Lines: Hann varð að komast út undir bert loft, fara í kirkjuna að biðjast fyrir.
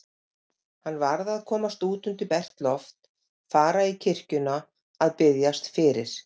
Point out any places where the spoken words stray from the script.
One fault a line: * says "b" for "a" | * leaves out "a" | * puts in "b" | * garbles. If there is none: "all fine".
all fine